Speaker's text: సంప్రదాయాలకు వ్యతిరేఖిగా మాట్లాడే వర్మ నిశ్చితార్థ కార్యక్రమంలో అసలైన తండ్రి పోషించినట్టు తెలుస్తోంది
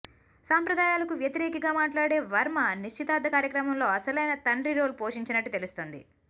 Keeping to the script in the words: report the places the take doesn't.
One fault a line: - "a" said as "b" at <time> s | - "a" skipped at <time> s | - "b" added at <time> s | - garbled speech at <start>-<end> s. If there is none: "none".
- "రోల్" added at 4.8 s